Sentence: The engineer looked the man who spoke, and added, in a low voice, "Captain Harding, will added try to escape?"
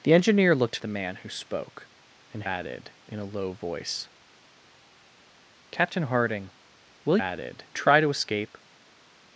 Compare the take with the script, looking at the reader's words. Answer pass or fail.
pass